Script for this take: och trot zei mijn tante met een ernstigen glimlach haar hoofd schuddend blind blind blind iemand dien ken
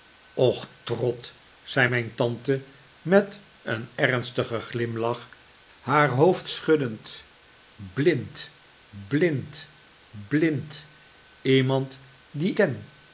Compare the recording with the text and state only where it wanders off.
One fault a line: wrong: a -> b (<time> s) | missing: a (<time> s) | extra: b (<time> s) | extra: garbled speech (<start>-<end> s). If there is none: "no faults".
no faults